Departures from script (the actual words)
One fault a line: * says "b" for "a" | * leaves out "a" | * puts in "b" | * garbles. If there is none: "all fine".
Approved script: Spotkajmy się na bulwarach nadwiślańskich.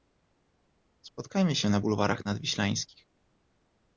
all fine